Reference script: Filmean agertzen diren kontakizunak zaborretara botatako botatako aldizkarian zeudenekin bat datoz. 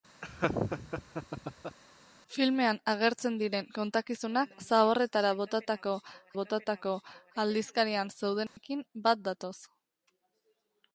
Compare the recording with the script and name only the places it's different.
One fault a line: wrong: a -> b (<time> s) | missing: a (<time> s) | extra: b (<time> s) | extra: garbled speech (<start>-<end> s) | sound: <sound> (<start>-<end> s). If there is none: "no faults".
sound: laugh (0.2-1.8 s)
sound: dropout (8.5-8.6 s)